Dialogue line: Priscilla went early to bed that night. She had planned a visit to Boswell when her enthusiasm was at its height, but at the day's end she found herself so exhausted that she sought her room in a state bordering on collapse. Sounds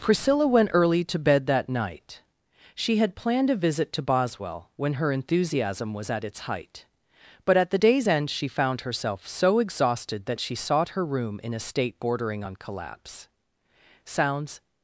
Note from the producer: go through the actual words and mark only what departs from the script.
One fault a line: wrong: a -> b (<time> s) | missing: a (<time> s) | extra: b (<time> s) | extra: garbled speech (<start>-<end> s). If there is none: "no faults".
no faults